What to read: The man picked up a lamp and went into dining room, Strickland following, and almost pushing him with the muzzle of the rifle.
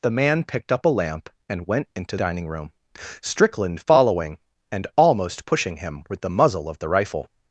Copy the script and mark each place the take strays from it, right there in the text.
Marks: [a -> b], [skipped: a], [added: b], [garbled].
The man picked up a lamp and went into dining room, Strickland following, and almost pushing him with the muzzle of the rifle.